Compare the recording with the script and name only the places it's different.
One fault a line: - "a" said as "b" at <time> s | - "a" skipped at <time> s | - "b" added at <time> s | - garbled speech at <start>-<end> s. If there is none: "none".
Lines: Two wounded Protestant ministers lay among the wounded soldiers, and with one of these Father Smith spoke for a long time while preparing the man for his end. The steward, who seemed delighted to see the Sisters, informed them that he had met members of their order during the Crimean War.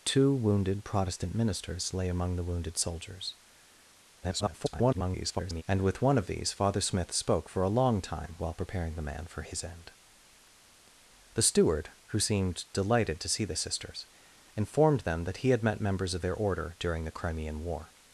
- garbled speech at 4.2-5.6 s